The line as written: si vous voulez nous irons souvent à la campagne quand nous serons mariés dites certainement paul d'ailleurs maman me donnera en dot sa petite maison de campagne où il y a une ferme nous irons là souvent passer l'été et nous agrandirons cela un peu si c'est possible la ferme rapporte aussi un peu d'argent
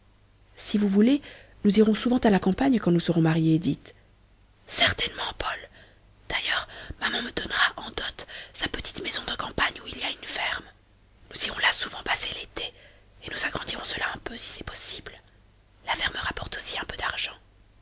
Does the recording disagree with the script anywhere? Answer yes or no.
no